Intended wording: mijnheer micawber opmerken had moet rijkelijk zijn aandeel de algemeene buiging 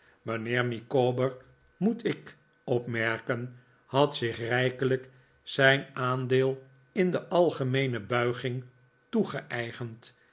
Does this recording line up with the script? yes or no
no